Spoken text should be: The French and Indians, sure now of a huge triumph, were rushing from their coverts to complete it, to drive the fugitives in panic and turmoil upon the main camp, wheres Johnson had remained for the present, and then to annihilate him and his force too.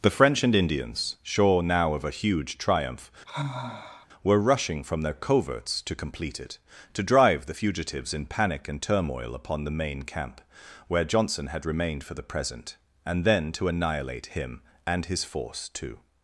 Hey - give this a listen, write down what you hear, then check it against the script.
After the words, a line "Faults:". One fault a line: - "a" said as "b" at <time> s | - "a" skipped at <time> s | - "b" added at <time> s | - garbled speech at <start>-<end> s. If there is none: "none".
The French and Indians, sure now of a huge triumph, were rushing from their coverts to complete it, to drive the fugitives in panic and turmoil upon the main camp, where Johnson had remained for the present, and then to annihilate him and his force too.
Faults:
- "wheres" said as "where" at 10.9 s